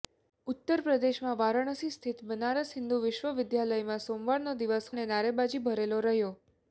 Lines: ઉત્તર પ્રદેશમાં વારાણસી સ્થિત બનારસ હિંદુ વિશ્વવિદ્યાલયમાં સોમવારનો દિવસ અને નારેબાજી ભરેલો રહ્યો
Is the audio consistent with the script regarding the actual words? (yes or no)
yes